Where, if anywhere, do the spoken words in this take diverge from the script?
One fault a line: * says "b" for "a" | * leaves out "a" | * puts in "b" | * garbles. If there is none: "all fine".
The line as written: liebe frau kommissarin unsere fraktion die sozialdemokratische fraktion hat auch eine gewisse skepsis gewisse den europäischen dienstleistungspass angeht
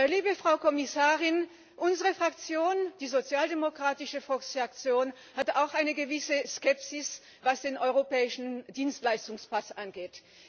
* says "was" for "gewisse"